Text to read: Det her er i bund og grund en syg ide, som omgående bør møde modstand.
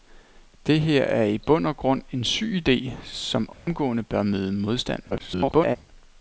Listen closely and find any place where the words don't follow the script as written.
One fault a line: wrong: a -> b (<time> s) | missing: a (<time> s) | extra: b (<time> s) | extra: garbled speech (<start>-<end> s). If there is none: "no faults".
extra: garbled speech (5.1-5.8 s)